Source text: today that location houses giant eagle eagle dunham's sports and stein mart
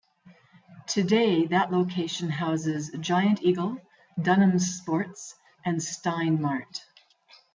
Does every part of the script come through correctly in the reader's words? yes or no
no